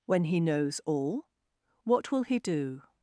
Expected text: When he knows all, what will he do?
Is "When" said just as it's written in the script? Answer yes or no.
yes